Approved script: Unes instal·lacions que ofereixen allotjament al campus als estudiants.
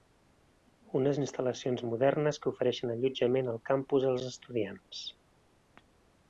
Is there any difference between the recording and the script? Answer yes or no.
yes